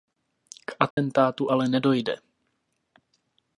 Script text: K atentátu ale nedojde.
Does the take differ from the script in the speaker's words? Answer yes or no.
no